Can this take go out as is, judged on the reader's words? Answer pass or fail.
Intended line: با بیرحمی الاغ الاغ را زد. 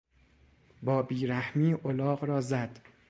fail